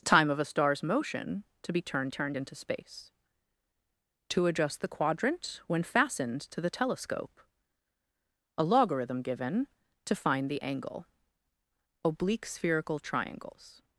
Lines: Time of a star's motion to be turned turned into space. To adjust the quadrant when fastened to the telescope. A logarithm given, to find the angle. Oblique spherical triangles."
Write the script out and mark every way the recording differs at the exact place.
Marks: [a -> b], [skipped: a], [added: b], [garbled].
Time of a star's motion to be turned turned into space. To adjust the quadrant when fastened to the telescope. A logarithm given, to find the angle. Oblique spherical triangles."